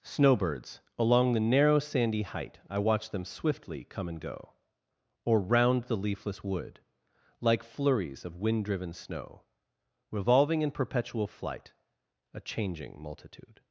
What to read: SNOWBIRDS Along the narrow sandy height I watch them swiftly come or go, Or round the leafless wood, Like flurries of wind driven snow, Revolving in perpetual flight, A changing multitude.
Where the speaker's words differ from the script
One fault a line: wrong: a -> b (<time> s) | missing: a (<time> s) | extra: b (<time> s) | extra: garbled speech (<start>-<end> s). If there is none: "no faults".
wrong: or -> and (4.1 s)